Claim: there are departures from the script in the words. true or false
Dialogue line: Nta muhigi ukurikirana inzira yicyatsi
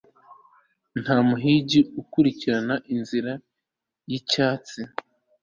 false